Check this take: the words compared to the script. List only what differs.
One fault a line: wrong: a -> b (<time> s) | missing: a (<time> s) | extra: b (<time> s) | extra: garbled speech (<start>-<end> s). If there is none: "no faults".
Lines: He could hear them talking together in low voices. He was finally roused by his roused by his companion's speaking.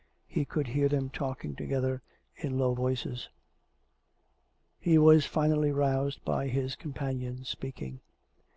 missing: roused by his (6.8 s)